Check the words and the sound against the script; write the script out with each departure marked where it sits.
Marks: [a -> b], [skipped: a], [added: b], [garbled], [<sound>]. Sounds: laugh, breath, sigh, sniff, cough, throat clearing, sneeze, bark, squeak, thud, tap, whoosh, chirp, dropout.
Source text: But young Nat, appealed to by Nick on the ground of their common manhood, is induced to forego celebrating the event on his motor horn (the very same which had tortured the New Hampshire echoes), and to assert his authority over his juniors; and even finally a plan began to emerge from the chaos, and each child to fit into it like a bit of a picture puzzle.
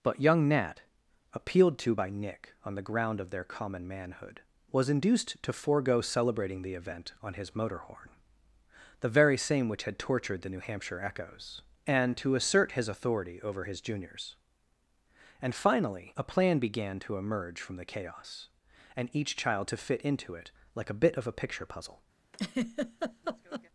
But young Nat, appealed to by Nick on the ground of their common manhood, [is -> was] induced to forego celebrating the event on his motor horn (the very same which had tortured the New Hampshire echoes), and to assert his authority over his juniors; and [skipped: even] finally a plan began to emerge from the chaos, and each child to fit into it like a bit of a picture puzzle. [laugh]